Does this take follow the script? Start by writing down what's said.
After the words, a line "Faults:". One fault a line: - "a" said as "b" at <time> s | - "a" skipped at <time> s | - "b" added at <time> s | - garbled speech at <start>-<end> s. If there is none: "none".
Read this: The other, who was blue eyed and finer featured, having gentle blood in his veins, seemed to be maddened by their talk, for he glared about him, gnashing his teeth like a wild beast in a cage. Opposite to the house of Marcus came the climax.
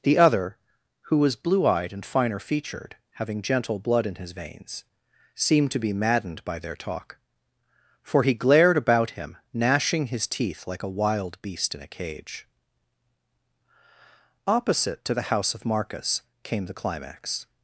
The other, who was blue eyed and finer featured, having gentle blood in his veins, seemed to be maddened by their talk, for he glared about him, gnashing his teeth like a wild beast in a cage. Opposite to the house of Marcus came the climax.
Faults:
none